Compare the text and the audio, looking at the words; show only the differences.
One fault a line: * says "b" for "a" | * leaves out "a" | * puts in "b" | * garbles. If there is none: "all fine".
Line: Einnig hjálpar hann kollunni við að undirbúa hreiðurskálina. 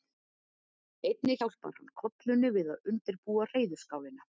all fine